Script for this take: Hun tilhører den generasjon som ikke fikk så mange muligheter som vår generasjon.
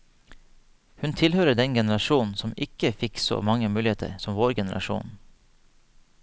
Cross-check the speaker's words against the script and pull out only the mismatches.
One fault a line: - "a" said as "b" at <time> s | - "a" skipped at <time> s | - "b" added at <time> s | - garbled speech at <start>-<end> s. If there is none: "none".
none